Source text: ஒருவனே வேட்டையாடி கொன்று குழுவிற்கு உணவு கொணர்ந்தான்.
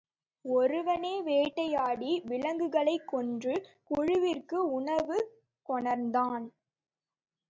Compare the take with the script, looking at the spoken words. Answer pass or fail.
fail